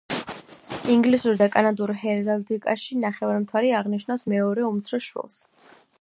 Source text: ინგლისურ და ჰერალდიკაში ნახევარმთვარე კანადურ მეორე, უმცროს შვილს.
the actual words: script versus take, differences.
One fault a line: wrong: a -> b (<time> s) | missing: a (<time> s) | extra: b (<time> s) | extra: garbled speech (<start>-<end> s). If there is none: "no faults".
extra: კანადურ (1.5 s)
wrong: კანადურ -> აღნიშნავს (3.8 s)